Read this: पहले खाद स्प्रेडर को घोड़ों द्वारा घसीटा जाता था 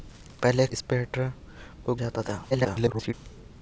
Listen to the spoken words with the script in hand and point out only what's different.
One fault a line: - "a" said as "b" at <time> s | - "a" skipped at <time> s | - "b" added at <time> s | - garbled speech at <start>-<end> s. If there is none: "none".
- "खाद" skipped at 0.7 s
- "घोड़ों द्वारा घसीटा" skipped at 1.9 s
- garbled speech at 2.5-3.1 s